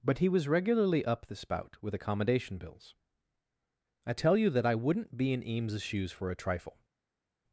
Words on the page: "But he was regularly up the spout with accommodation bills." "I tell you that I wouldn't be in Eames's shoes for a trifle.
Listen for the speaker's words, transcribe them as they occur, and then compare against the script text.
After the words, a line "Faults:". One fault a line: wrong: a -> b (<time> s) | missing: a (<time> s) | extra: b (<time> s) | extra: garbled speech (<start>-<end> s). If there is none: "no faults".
"But he was regularly up the spout with accommodation bills." "I tell you that I wouldn't be in Eames's shoes for a trifle.
Faults:
no faults